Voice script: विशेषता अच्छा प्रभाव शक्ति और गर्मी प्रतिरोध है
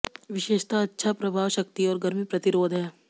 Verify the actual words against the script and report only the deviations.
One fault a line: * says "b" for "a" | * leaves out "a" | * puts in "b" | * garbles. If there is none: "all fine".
all fine